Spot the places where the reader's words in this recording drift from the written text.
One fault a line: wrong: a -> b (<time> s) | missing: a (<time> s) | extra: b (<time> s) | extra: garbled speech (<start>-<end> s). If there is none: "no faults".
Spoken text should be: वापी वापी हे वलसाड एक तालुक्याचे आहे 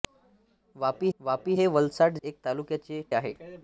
no faults